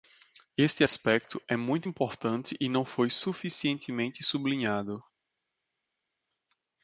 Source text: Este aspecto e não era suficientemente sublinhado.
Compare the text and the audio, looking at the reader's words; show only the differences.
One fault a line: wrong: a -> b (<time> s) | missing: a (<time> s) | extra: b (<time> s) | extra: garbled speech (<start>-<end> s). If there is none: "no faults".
extra: é muito importante (1.4 s)
wrong: era -> foi (2.8 s)